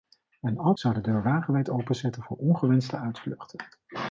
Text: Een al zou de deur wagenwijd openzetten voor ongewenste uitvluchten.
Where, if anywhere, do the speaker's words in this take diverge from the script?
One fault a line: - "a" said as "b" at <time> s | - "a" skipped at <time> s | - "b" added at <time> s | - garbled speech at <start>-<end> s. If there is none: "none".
none